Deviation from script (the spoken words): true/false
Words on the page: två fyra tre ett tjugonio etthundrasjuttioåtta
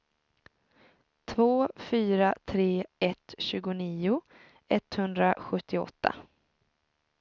false